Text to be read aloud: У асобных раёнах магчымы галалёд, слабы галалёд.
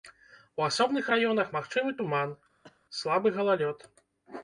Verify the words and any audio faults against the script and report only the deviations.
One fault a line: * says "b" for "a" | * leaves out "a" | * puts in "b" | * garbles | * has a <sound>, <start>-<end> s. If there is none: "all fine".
* says "туман" for "галалёд"
* has a cough, 2.6-2.8 s